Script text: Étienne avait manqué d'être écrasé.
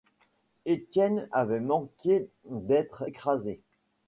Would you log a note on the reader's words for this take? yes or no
no